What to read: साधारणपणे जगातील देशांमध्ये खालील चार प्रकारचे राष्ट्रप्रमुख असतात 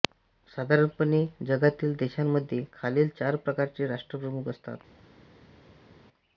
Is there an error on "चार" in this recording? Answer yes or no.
no